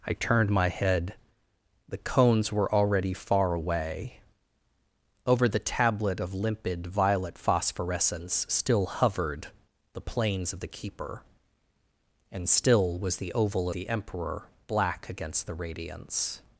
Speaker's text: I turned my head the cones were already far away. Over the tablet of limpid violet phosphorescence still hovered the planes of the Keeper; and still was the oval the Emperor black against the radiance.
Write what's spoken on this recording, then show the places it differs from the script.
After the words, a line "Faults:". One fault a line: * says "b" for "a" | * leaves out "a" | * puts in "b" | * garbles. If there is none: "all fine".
I turned my head the cones were already far away. Over the tablet of limpid violet phosphorescence still hovered the planes of the Keeper; and still was the oval the Emperor black against the radiance.
Faults:
all fine